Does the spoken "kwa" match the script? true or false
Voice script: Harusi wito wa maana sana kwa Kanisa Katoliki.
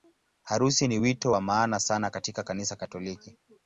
false